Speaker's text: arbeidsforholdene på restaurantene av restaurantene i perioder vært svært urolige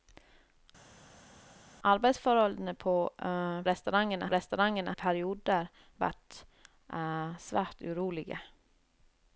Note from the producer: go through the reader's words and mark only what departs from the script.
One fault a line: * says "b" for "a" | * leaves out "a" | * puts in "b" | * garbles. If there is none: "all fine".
all fine